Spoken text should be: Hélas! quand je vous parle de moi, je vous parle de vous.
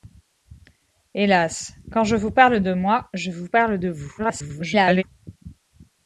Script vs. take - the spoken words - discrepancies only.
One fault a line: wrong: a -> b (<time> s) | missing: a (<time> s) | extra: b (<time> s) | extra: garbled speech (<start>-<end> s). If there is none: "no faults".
extra: garbled speech (4.2-5.0 s)